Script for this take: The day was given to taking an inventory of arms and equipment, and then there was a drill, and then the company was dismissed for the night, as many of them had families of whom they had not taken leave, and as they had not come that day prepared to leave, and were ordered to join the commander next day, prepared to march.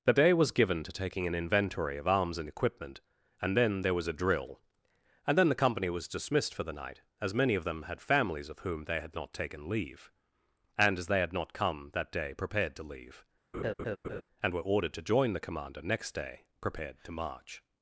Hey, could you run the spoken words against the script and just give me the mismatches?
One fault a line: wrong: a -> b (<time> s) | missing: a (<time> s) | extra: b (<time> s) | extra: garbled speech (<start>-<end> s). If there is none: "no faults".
no faults